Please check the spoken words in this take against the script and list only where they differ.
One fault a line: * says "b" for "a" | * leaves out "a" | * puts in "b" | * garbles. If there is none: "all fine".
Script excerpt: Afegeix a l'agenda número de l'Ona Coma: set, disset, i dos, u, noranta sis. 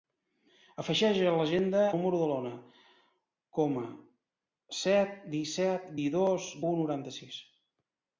all fine